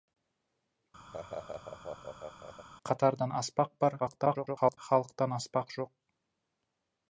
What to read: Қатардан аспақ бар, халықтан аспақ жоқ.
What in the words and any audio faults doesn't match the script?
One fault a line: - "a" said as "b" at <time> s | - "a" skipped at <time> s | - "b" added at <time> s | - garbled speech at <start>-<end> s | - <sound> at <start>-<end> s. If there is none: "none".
- laugh at 1.1-2.7 s
- garbled speech at 4.0-4.8 s